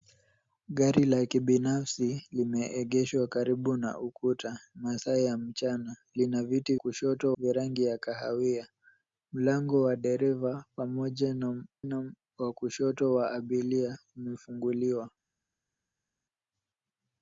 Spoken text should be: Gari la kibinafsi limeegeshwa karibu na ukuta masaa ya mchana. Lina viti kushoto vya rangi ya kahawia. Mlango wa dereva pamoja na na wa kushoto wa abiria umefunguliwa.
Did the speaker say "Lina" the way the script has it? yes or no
yes